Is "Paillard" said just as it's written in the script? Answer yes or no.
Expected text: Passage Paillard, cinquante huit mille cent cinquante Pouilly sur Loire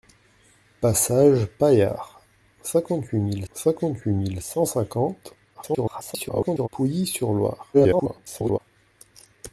yes